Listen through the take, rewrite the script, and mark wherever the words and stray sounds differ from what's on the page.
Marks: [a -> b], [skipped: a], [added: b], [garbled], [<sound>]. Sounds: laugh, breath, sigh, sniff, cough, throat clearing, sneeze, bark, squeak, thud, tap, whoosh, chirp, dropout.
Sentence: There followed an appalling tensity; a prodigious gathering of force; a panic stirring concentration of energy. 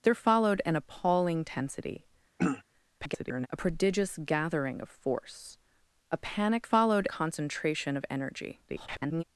There followed an appalling tensity; [throat clearing] [garbled] a prodigious gathering of force; a panic [stirring -> followed] concentration of energy. [garbled]